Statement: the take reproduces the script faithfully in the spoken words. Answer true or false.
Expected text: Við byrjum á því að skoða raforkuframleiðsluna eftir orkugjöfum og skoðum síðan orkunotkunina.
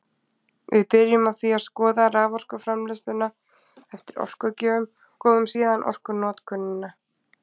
false